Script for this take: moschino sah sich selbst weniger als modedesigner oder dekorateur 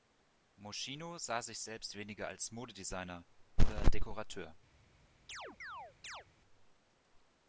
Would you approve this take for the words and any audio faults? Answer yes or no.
no